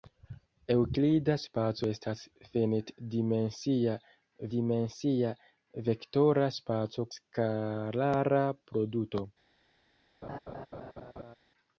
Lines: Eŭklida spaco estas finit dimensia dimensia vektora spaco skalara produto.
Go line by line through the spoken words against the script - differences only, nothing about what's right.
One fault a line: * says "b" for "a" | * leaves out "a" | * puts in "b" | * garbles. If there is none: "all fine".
all fine